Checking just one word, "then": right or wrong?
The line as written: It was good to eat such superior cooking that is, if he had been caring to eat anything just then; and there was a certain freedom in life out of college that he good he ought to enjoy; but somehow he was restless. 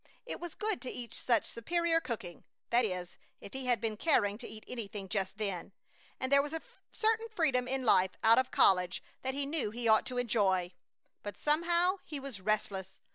right